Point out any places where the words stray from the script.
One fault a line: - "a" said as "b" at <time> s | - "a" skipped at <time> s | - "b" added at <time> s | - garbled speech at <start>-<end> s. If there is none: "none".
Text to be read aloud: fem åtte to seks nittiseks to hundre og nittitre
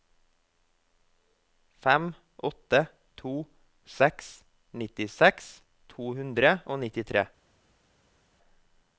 none